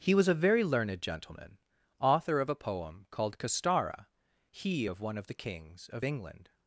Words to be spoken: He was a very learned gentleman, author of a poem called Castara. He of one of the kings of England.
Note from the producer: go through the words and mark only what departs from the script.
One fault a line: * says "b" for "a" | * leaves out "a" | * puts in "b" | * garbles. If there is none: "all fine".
all fine